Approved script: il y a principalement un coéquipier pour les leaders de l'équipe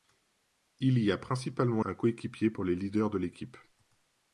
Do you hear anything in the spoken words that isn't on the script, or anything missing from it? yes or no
no